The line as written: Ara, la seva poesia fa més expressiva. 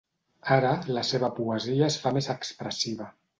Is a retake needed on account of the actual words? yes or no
yes